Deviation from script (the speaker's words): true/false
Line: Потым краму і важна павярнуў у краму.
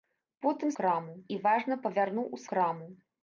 false